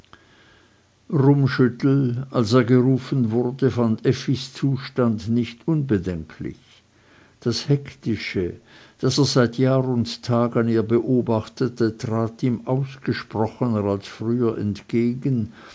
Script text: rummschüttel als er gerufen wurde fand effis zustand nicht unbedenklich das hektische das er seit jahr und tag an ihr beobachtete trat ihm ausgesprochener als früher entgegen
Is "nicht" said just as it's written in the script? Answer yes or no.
yes